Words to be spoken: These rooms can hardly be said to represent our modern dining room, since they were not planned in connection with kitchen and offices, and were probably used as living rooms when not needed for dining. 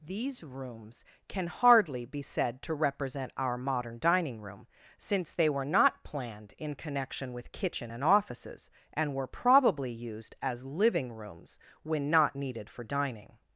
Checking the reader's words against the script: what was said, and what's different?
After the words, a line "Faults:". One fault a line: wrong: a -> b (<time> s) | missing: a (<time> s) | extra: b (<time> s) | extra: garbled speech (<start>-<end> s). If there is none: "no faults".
These rooms can hardly be said to represent our modern dining room, since they were not planned in connection with kitchen and offices, and were probably used as living rooms when not needed for dining.
Faults:
no faults